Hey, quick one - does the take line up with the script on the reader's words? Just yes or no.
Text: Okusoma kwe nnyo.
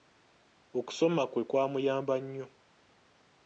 no